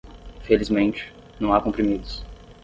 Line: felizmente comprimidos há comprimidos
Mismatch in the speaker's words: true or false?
true